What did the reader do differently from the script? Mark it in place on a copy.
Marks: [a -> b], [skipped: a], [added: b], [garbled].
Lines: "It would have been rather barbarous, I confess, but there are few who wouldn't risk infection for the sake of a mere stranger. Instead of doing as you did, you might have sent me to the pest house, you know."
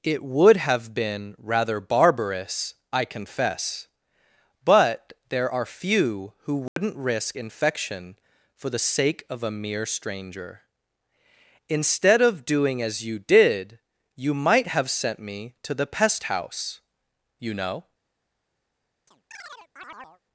"It would have been rather barbarous, I confess, but there are few who wouldn't risk infection for the sake of a mere stranger. Instead of doing as you did, you might have sent me to the pest house, you know."